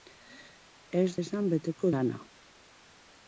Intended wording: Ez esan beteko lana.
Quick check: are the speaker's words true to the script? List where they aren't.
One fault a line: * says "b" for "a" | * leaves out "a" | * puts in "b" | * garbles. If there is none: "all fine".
all fine